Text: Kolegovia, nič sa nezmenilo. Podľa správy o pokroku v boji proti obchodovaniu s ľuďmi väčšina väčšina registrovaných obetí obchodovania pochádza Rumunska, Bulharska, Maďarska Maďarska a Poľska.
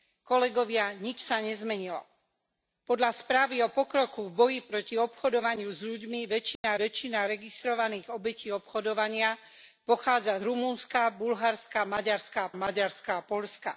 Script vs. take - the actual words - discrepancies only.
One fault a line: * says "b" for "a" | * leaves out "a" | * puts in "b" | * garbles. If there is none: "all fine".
all fine